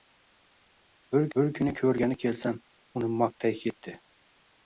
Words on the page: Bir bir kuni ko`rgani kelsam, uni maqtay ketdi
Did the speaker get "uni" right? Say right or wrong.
right